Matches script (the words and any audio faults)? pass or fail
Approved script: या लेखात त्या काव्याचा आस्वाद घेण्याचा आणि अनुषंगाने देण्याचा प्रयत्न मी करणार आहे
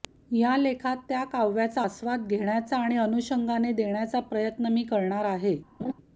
fail